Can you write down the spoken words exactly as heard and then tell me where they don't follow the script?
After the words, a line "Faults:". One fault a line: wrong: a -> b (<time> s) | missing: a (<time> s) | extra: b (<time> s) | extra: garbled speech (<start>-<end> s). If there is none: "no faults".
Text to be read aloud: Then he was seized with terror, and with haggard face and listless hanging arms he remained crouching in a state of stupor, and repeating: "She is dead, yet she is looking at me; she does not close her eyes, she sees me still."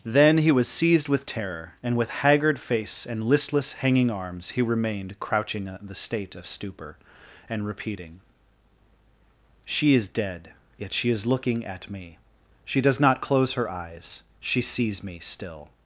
Then he was seized with terror, and with haggard face and listless hanging arms he remained crouching in the state of stupor, and repeating: "She is dead, yet she is looking at me; she does not close her eyes, she sees me still."
Faults:
wrong: a -> the (5.8 s)